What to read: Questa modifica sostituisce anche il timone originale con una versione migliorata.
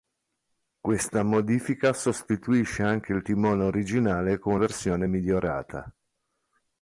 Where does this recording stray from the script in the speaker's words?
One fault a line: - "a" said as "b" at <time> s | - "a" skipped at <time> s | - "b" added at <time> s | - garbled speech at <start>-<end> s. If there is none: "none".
- "una" skipped at 4.5 s